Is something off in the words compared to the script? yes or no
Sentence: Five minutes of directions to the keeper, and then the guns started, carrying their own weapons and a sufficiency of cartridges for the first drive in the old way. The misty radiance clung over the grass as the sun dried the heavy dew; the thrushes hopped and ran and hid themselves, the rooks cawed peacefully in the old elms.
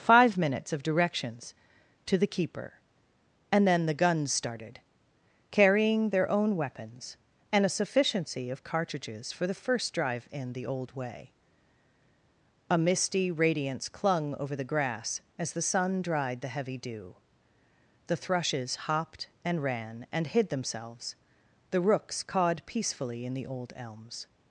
yes